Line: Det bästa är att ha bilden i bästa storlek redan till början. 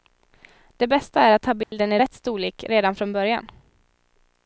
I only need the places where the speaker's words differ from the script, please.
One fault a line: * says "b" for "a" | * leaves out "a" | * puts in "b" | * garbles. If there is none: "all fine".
* says "rätt" for "bästa"
* says "från" for "till"